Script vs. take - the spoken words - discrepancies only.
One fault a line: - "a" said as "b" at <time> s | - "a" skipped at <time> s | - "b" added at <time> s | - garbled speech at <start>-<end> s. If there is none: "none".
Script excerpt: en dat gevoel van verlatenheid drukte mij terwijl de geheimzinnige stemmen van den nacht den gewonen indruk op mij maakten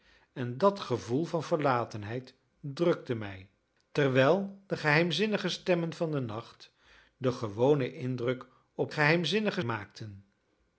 - "mij" said as "geheimzinnige" at 8.9 s